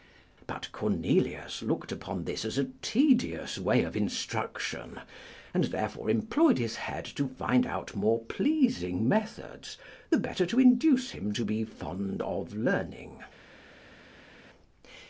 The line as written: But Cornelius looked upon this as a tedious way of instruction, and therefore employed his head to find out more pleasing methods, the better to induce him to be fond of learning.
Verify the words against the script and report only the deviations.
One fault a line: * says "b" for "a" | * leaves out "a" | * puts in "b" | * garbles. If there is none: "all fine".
all fine